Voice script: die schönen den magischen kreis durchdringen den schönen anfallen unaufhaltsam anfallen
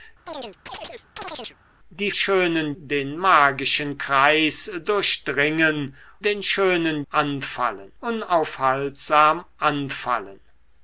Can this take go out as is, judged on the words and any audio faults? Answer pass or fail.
fail